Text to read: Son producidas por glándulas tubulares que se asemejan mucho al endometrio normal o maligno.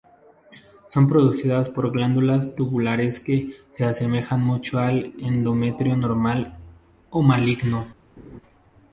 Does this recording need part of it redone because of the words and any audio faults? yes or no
yes